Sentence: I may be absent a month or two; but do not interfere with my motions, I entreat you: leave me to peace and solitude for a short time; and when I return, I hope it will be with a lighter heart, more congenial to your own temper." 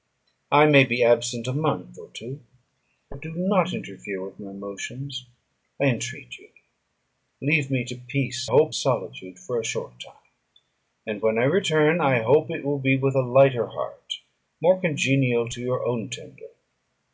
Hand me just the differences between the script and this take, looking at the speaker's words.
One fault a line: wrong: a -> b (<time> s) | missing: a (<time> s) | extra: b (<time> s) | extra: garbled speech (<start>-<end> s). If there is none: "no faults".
wrong: and -> hope (8.5 s)